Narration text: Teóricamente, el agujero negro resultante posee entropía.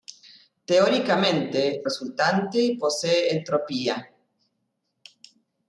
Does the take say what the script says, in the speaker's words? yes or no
no